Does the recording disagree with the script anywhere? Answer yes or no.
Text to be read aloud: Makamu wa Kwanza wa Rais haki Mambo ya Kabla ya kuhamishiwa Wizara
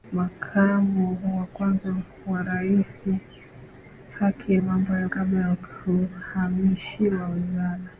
no